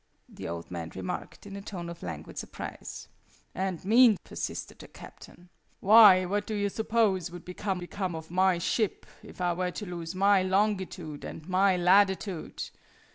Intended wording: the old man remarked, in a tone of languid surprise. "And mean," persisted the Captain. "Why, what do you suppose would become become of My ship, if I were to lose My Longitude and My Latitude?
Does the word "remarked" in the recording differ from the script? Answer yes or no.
no